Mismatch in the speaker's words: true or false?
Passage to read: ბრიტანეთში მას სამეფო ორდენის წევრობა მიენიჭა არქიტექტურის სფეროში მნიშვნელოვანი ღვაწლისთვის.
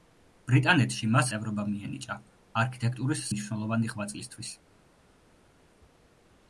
true